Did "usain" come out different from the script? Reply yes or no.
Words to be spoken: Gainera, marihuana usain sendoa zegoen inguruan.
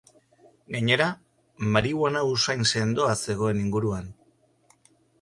no